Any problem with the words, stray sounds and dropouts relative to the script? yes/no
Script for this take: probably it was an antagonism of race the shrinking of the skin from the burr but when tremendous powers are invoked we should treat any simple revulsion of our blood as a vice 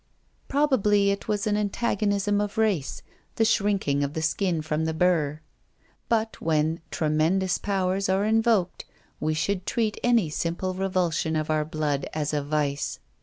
no